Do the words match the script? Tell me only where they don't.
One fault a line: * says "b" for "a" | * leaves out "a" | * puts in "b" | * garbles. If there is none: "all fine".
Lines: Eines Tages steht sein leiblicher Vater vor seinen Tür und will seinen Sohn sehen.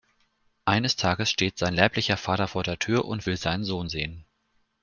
* says "der" for "seinen"